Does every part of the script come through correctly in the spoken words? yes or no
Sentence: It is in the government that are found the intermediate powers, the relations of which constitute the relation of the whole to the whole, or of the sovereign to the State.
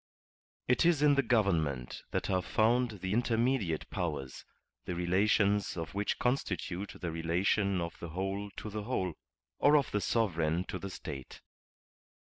yes